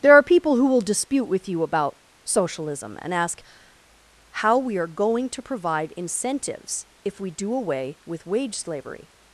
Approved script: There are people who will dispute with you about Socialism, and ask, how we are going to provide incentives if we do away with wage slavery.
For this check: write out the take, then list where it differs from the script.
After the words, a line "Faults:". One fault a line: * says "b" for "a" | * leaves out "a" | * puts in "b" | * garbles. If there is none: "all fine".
There are people who will dispute with you about Socialism, and ask, how we are going to provide incentives if we do away with wage slavery.
Faults:
all fine